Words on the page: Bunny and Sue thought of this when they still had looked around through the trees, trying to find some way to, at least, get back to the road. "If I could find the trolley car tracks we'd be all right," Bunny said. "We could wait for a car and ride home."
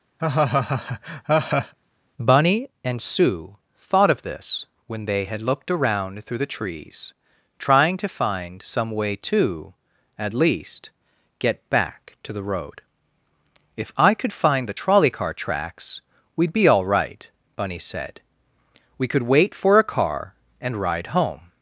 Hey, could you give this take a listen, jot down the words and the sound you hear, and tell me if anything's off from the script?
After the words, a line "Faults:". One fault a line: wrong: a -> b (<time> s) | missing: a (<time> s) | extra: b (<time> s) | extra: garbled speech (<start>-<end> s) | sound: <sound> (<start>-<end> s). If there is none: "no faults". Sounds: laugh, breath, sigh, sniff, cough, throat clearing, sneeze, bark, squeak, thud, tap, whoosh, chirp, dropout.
Bunny and Sue thought of this when they had looked around through the trees, trying to find some way to, at least, get back to the road. "If I could find the trolley car tracks we'd be all right," Bunny said. "We could wait for a car and ride home."
Faults:
sound: laugh (0.2-1.7 s)
missing: still (5.3 s)